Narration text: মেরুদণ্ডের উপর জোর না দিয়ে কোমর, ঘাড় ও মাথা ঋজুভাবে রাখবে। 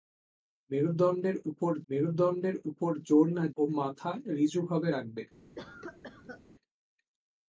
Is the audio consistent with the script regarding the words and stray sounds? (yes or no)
no